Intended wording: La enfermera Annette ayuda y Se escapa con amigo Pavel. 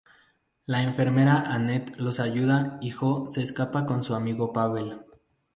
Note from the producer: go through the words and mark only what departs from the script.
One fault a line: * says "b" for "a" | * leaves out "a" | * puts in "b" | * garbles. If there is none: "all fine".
* puts in "los"
* puts in "Jo"
* puts in "su"